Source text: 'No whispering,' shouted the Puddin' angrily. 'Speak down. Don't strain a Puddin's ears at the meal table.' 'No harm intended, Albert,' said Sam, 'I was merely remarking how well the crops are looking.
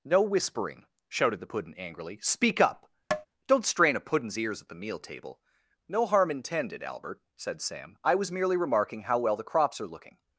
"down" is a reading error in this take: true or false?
true